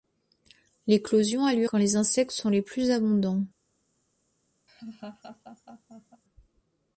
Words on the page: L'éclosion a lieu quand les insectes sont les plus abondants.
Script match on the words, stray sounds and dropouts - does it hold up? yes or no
no